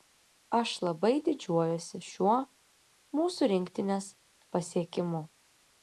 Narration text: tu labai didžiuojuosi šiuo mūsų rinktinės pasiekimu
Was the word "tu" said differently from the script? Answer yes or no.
yes